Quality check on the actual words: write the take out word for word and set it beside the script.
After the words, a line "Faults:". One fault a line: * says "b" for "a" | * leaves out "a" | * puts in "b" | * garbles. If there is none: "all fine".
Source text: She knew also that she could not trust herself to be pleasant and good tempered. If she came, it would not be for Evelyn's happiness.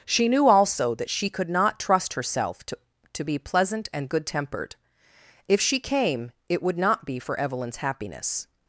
She knew also that she could not trust herself to to be pleasant and good tempered. If she came, it would not be for Evelyn's happiness.
Faults:
* puts in "to"